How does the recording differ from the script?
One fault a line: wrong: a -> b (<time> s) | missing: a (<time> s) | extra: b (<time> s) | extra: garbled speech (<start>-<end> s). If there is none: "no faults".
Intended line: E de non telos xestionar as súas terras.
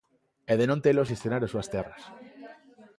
no faults